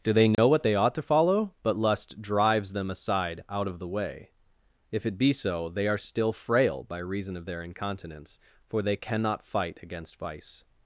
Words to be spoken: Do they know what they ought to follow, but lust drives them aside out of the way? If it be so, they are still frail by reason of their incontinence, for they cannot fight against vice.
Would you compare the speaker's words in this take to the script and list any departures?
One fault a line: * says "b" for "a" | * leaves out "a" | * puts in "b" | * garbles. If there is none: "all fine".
all fine